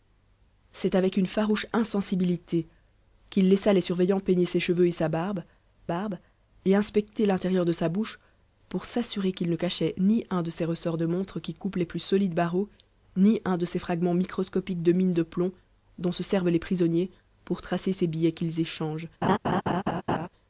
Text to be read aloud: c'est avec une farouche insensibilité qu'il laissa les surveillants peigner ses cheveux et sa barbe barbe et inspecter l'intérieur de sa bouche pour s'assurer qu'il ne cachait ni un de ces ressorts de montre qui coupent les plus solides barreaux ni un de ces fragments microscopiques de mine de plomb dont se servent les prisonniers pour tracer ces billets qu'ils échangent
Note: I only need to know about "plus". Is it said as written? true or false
true